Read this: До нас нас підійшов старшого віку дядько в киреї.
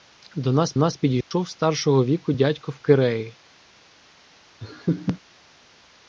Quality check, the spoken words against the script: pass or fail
pass